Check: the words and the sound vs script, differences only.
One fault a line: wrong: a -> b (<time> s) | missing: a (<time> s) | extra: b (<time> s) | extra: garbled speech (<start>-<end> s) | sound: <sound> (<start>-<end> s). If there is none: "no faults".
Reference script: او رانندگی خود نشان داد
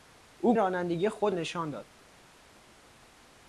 no faults